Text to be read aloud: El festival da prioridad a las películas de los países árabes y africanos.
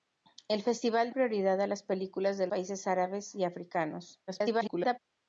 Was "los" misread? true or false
true